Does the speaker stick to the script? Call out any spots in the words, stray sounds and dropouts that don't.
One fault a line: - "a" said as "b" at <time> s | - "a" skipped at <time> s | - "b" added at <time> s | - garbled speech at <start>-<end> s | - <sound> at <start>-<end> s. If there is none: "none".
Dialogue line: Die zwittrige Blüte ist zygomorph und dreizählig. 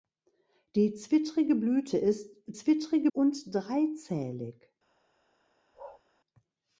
- "zygomorph" said as "zwittrige" at 2.5 s
- bark at 5.7-6.0 s